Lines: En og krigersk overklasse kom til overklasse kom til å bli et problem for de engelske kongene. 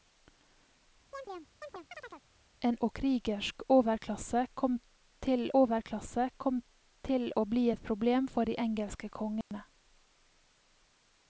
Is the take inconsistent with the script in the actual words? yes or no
no